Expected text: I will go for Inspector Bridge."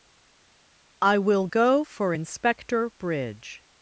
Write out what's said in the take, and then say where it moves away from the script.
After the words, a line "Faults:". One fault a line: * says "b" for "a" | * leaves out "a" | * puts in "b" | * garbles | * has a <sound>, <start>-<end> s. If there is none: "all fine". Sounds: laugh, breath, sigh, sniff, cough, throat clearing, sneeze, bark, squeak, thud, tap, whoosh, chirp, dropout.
I will go for Inspector Bridge."
Faults:
all fine